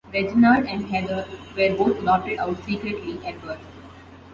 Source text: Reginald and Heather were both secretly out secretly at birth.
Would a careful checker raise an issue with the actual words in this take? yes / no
yes